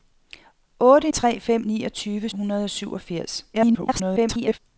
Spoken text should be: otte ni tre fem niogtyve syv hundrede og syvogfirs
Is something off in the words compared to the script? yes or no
yes